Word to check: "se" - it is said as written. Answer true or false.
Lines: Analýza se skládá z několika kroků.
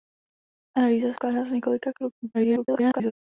false